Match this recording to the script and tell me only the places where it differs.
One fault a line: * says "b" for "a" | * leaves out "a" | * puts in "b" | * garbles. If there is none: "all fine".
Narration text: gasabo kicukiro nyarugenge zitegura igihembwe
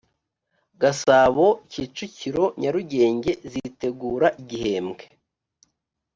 all fine